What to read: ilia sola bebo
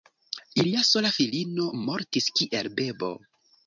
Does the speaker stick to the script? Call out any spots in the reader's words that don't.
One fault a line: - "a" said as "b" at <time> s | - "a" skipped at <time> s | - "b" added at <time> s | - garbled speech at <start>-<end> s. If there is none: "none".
- "filino mortis kiel" added at 1.2 s